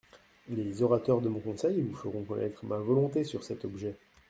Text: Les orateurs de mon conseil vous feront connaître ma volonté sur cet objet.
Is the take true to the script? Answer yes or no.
yes